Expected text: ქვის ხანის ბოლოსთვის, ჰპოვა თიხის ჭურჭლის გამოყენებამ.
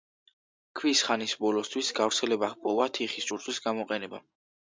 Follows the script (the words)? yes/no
no